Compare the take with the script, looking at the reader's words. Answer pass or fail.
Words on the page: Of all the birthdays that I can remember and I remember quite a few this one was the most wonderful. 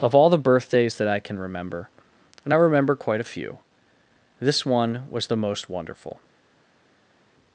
pass